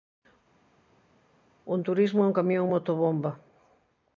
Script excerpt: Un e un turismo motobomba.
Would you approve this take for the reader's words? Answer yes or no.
no